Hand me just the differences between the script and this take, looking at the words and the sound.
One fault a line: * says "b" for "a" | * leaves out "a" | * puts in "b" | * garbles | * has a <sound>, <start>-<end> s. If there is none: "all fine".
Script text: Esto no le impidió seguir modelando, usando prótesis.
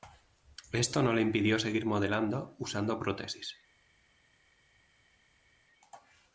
all fine